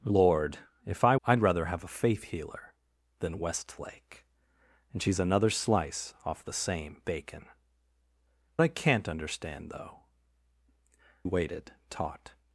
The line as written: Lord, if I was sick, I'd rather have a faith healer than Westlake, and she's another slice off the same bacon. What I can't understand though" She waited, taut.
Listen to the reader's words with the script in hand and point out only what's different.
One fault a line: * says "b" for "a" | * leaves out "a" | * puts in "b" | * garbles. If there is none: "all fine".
* leaves out "was sick"
* leaves out "What"
* leaves out "She"